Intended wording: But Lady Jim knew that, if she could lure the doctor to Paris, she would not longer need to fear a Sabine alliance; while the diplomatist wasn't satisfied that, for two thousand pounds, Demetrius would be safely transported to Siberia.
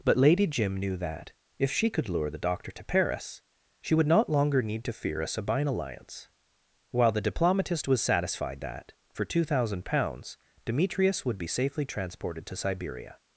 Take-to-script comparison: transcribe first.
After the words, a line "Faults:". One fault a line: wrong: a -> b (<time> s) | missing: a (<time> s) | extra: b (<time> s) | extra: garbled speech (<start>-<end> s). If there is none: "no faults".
But Lady Jim knew that, if she could lure the doctor to Paris, she would not longer need to fear a Sabine alliance; while the diplomatist was satisfied that, for two thousand pounds, Demetrius would be safely transported to Siberia.
Faults:
wrong: wasn't -> was (7.9 s)